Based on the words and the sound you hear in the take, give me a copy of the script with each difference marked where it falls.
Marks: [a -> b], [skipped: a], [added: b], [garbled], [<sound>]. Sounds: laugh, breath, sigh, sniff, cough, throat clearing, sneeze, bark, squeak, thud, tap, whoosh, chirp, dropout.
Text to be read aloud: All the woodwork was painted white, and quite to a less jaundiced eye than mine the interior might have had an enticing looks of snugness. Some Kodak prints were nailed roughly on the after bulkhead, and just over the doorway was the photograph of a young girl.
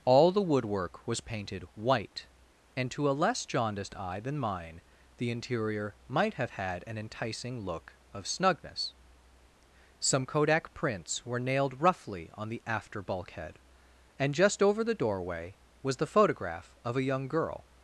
All the woodwork was painted white, and [skipped: quite] to a less jaundiced eye than mine the interior might have had an enticing [looks -> look] of snugness. Some Kodak prints were nailed roughly on the after bulkhead, and just over the doorway was the photograph of a young girl.